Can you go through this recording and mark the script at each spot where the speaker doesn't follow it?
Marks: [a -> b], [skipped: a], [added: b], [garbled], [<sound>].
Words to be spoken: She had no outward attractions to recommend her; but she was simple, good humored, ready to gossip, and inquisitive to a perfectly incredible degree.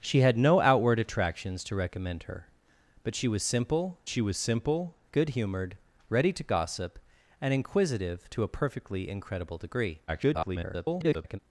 She had no outward attractions to recommend her; but she was simple, [added: she was simple] good humored, ready to gossip, and inquisitive to a perfectly incredible degree. [garbled]